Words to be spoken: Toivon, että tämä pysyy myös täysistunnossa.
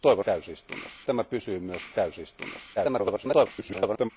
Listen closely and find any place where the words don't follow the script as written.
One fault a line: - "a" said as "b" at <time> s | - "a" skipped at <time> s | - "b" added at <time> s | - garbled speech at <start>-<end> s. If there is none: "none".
- "että" said as "täysistunnossa" at 0.2 s
- garbled speech at 2.8-4.1 s